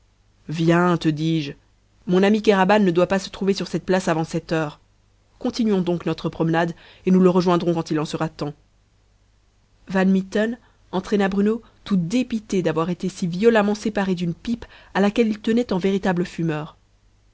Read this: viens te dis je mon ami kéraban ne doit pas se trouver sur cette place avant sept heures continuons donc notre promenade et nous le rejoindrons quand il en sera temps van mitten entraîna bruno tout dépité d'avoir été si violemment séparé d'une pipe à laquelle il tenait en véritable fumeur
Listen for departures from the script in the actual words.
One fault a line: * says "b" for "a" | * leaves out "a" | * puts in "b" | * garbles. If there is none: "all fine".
all fine